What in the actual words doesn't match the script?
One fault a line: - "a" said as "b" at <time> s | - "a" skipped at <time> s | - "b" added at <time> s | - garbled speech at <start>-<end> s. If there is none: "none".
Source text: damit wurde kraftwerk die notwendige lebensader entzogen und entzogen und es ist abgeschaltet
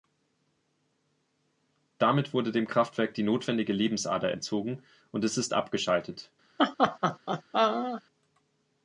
- "dem" added at 2.5 s
- "entzogen und" skipped at 5.3 s